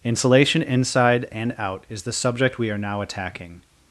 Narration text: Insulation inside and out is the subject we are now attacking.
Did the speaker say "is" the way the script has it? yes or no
yes